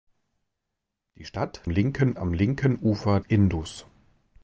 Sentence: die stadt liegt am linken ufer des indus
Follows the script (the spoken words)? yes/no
no